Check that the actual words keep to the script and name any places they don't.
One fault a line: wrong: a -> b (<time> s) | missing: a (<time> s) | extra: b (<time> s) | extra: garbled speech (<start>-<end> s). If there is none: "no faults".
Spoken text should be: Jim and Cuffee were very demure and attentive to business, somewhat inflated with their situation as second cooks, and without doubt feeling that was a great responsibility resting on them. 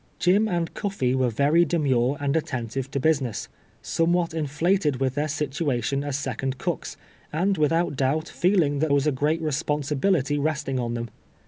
no faults